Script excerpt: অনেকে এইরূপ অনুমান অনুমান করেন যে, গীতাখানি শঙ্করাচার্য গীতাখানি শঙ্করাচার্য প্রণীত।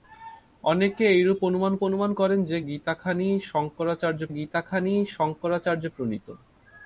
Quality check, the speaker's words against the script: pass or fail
pass